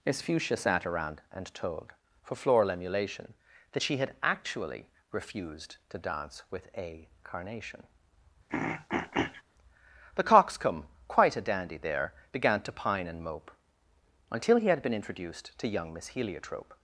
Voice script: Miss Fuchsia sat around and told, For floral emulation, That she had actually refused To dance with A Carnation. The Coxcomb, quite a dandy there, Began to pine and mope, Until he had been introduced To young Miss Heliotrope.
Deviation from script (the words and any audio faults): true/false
true